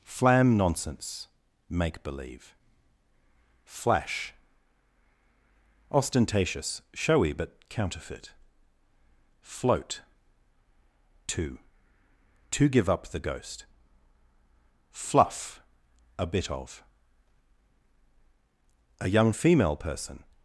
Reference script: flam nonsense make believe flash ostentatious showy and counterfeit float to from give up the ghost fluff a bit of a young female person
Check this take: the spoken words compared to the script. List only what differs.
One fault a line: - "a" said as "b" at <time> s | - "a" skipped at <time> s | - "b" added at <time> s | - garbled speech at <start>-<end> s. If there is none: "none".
- "and" said as "but" at 7.3 s
- "from" said as "to" at 12.5 s